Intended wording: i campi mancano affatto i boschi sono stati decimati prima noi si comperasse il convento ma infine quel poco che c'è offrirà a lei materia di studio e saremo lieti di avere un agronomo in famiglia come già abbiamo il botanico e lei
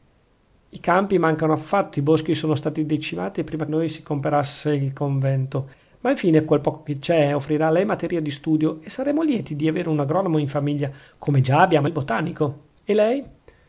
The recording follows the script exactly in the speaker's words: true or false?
true